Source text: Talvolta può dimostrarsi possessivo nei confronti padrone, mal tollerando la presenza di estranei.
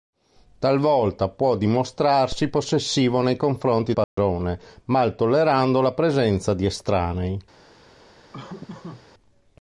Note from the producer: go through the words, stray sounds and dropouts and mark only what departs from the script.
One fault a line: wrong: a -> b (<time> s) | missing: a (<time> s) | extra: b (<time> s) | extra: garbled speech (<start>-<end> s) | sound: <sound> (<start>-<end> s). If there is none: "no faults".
sound: dropout (4.0-4.2 s)
sound: laugh (8.3-9.1 s)